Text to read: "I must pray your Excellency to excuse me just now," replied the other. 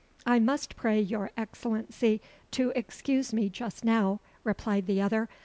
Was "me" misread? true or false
false